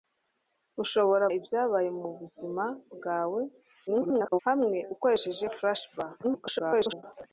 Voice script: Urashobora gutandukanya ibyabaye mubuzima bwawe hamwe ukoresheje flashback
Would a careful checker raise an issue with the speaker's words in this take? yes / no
yes